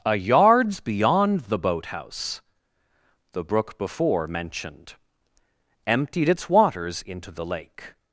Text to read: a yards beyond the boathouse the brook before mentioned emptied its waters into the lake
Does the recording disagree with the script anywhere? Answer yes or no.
no